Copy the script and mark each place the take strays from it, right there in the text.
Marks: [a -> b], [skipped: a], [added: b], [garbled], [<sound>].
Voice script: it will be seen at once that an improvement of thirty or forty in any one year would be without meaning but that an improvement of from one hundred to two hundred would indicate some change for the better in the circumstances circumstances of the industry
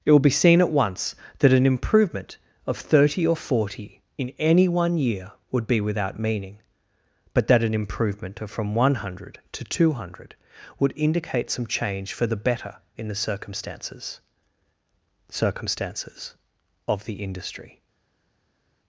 it will be seen at once that an improvement of thirty or forty in any one year would be without meaning but that an improvement of from one hundred to two hundred would indicate some change for the better in the circumstances circumstances of the industry